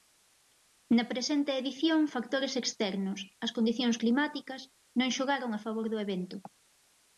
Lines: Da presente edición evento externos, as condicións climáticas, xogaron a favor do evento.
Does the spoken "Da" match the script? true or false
false